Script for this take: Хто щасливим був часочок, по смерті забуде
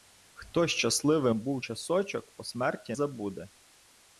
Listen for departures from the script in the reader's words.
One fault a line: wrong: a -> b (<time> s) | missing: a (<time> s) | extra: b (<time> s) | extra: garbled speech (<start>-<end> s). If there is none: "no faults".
no faults